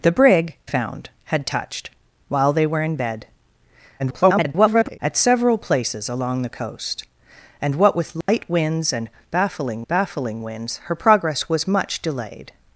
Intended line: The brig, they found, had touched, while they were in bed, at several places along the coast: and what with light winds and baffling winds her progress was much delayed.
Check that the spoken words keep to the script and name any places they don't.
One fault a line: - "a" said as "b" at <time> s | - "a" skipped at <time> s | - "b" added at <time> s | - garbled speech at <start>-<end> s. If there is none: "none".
- "they" skipped at 0.6 s
- garbled speech at 4.0-5.0 s
- "baffling" added at 9.9 s